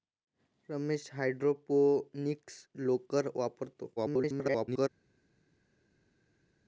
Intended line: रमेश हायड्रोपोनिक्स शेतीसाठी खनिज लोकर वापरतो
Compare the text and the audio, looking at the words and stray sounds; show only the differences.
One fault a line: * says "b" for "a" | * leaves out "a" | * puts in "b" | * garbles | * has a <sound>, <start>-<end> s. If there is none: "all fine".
* leaves out "शेतीसाठी खनिज"
* garbles